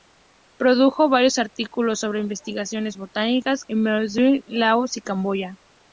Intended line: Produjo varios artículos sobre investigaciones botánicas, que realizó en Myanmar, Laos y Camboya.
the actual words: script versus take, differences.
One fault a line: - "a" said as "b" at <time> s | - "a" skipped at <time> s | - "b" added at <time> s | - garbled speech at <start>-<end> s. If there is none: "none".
- "que realizó" skipped at 3.6 s